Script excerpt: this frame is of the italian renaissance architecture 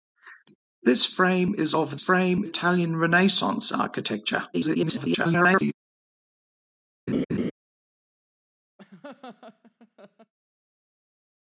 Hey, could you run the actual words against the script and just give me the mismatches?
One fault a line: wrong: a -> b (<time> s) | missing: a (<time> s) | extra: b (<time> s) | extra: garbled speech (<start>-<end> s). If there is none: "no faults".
wrong: the -> frame (1.9 s)
extra: garbled speech (4.5-5.7 s)